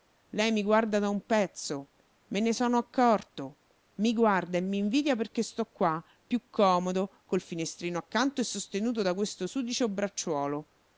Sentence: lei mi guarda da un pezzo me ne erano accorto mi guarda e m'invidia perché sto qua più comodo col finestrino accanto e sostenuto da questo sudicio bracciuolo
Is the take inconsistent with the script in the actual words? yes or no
yes